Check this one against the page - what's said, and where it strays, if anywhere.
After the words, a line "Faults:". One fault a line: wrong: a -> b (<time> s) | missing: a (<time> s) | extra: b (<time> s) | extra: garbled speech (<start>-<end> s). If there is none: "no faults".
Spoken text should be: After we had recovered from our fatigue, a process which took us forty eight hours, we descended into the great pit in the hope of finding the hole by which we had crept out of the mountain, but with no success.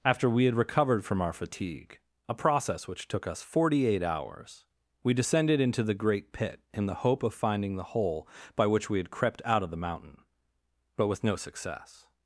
After we had recovered from our fatigue, a process which took us forty eight hours, we descended into the great pit in the hope of finding the hole by which we had crept out of the mountain, but with no success.
Faults:
no faults